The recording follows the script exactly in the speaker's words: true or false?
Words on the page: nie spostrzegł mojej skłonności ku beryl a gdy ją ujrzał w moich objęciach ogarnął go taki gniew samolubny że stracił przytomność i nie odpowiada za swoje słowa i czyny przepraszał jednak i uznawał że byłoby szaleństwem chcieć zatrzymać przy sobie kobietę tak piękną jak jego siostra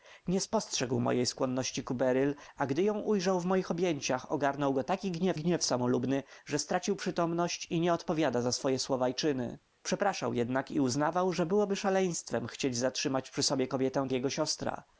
false